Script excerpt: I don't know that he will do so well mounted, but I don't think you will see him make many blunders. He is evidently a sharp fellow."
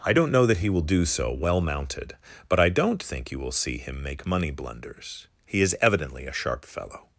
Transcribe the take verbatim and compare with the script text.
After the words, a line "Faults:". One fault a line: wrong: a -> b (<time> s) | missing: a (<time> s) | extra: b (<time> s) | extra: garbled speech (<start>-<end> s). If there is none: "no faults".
I don't know that he will do so well mounted, but I don't think you will see him make money blunders. He is evidently a sharp fellow."
Faults:
wrong: many -> money (4.3 s)